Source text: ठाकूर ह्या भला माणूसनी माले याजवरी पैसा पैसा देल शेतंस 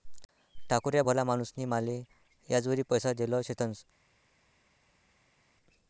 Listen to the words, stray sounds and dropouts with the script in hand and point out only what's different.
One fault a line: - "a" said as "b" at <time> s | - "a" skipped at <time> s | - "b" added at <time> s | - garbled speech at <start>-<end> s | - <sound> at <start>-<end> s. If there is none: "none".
- "पैसा" skipped at 3.1 s